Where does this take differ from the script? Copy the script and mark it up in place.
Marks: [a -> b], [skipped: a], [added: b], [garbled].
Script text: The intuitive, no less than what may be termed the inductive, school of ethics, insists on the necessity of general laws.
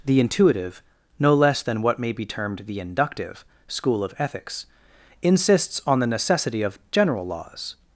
The intuitive, no less than what may be termed the inductive, school of ethics, insists on the necessity of general laws.